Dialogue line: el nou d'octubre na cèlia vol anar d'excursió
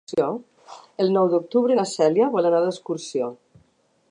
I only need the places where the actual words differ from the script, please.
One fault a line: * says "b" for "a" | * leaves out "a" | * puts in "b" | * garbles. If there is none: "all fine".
all fine